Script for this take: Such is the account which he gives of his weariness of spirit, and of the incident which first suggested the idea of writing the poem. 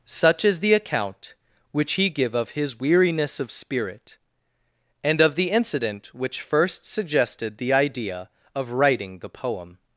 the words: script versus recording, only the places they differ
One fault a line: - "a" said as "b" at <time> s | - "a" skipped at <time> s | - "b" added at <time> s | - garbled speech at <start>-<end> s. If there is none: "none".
- "gives" said as "give" at 2.1 s